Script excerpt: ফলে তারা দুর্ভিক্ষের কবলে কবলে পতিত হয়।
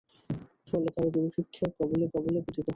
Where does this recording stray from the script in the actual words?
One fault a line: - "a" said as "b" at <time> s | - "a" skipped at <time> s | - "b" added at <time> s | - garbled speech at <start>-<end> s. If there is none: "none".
none